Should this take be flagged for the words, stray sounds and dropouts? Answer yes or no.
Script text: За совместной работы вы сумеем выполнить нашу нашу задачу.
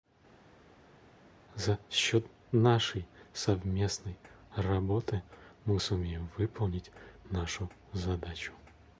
yes